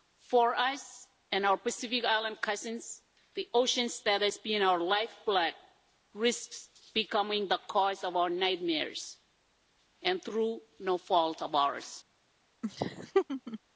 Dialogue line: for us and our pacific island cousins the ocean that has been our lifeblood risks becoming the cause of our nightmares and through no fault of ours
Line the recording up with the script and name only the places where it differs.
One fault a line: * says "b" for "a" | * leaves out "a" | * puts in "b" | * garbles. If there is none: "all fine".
all fine